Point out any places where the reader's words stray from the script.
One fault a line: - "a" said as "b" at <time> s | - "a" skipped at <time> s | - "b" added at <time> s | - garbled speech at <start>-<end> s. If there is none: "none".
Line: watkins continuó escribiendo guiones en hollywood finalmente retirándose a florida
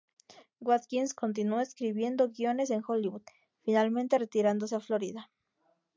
none